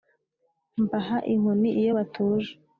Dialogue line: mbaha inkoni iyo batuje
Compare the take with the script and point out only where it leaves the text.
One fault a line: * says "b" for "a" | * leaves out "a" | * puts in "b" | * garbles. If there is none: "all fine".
all fine